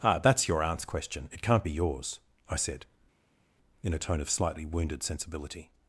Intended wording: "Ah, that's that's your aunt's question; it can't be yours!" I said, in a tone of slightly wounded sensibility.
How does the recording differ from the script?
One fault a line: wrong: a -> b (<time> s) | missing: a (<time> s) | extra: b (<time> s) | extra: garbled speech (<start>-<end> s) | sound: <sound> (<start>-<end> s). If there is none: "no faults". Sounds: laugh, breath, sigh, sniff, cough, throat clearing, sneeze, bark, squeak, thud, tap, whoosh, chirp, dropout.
missing: that's (0.5 s)